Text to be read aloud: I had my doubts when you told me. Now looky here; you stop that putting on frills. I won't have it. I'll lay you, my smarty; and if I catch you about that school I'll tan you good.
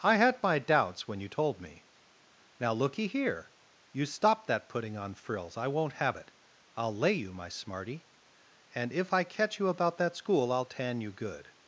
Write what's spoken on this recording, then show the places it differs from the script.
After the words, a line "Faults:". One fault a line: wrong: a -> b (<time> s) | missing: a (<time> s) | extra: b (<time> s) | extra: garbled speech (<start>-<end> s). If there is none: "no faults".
I had my doubts when you told me. Now looky here; you stop that putting on frills. I won't have it. I'll lay you, my smarty; and if I catch you about that school I'll tan you good.
Faults:
no faults